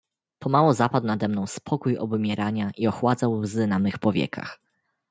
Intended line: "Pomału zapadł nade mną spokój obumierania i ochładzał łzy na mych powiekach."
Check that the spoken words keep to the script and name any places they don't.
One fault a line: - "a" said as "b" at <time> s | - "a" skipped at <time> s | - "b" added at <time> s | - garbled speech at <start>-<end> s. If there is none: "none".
none